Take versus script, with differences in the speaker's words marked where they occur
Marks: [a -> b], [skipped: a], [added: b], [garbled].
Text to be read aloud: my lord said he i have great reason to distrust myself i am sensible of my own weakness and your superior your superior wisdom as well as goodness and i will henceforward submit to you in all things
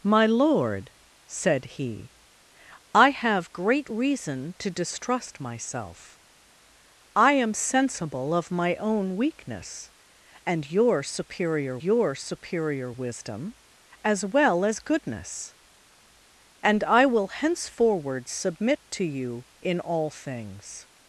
my lord said he i have great reason to distrust myself i am sensible of my own weakness and your superior your superior wisdom as well as goodness and i will henceforward submit to you in all things